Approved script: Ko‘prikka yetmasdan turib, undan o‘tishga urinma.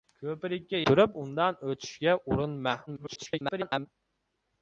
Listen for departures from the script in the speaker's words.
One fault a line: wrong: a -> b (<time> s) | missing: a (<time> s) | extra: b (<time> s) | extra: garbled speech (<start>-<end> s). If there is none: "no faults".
missing: yetmasdan (0.8 s)
extra: garbled speech (2.9-3.9 s)